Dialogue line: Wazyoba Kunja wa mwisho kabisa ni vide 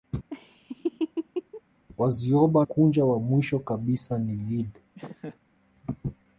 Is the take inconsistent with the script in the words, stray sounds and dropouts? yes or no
yes